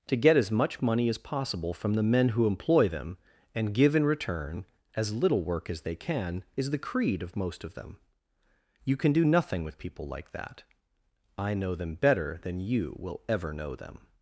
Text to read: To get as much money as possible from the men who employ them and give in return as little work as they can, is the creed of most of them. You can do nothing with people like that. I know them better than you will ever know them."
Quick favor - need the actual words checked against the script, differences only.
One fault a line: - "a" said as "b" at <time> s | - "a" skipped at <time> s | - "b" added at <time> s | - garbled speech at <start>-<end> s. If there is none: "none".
none